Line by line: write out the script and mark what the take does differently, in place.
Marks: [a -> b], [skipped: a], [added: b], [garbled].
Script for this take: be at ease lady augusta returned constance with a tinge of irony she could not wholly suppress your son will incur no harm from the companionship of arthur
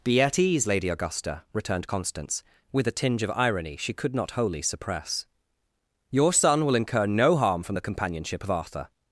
be at ease lady augusta returned constance with a tinge of irony she could not wholly suppress your son will incur no harm from the companionship of arthur